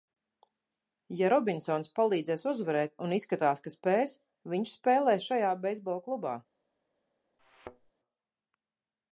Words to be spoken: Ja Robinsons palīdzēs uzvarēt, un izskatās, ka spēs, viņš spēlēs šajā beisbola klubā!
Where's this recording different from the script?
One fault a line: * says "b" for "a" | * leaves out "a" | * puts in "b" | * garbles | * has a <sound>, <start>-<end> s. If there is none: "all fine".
* has a thud, 7.4-7.9 s